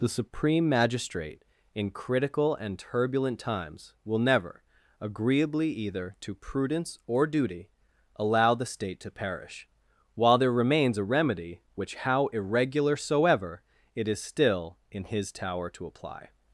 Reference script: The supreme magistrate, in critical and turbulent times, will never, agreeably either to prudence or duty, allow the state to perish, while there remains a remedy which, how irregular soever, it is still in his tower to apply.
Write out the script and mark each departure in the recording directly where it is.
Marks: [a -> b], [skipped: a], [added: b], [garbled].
The supreme magistrate, in critical and turbulent times, will never, agreeably either to prudence or duty, allow the state to perish, while there remains a remedy which, how irregular soever, it is still in his tower to apply.